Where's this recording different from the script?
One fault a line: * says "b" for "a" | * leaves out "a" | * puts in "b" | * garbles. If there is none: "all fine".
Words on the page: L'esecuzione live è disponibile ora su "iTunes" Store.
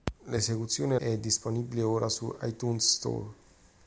* leaves out "live"